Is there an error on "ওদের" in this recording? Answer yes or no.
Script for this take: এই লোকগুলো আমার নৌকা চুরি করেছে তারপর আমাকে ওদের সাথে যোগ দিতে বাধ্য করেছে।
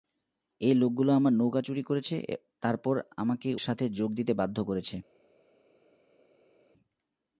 yes